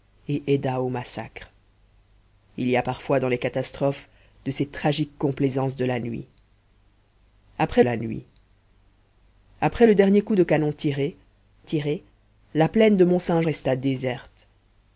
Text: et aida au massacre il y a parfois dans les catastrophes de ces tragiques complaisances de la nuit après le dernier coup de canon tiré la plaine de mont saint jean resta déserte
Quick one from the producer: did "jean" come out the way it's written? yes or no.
no